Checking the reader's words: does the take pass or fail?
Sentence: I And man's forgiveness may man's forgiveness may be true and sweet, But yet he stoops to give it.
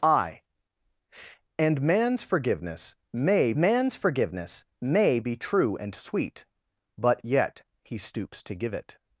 pass